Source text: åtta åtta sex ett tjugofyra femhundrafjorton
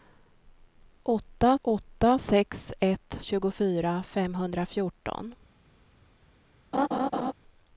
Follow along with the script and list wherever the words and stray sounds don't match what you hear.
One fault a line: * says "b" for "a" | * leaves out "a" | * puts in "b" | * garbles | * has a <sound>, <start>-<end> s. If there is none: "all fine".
* has a laugh, 6.7-7.3 s